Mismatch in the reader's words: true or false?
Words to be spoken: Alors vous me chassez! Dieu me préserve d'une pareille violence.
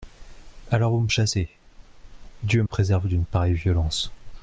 true